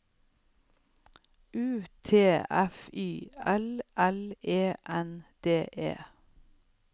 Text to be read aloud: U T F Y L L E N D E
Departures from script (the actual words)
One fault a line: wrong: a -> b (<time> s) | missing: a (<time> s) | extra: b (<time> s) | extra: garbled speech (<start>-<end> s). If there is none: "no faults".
no faults